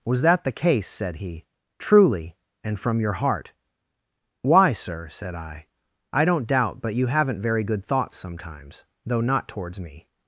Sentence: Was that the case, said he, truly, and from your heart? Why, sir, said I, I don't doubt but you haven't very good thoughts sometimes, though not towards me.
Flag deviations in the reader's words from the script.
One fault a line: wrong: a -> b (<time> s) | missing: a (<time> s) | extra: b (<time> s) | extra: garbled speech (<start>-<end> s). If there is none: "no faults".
no faults